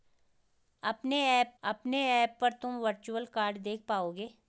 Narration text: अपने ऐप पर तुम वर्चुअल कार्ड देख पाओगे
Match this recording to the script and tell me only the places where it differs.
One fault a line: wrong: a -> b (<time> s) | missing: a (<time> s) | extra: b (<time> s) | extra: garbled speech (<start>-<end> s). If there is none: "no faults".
extra: अपने ऐप (1.6 s)